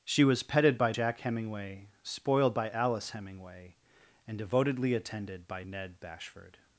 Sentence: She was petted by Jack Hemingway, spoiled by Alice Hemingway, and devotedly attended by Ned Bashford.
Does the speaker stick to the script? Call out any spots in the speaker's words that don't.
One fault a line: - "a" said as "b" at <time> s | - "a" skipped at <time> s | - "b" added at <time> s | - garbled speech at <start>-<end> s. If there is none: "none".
none